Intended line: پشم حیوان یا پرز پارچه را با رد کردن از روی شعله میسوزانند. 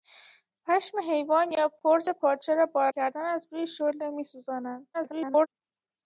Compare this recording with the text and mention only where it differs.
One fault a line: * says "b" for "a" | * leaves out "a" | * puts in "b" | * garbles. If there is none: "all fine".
* leaves out "رد"
* garbles